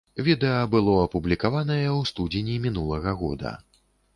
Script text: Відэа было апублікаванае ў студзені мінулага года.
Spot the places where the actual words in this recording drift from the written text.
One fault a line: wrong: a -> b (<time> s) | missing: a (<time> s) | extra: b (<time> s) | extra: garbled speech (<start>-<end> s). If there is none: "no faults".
no faults